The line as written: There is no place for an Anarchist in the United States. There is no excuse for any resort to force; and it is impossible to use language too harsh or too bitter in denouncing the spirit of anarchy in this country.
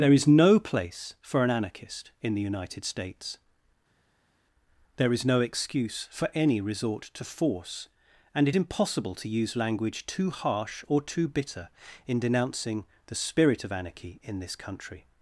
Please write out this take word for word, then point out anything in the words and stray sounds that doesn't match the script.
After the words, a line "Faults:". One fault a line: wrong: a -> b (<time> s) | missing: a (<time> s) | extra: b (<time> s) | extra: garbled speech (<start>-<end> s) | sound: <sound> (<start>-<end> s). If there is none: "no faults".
There is no place for an Anarchist in the United States. There is no excuse for any resort to force; and it impossible to use language too harsh or too bitter in denouncing the spirit of anarchy in this country.
Faults:
missing: is (8.6 s)